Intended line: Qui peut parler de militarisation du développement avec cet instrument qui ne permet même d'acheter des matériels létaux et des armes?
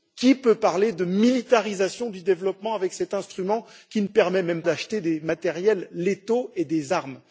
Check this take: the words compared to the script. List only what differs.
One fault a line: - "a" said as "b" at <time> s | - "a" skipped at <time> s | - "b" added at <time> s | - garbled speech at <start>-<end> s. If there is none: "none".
none